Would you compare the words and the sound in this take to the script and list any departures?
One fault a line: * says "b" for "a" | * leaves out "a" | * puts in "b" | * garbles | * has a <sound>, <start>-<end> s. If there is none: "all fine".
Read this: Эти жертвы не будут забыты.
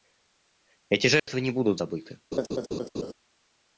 * has a dropout, 1.2-1.3 s
* has a laugh, 2.3-3.1 s